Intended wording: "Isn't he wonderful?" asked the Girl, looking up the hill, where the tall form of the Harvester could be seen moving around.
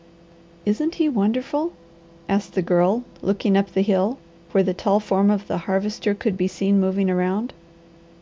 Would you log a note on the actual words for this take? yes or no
no